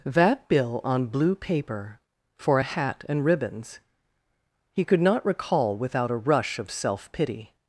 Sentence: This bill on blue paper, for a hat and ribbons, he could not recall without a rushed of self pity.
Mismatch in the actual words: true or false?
true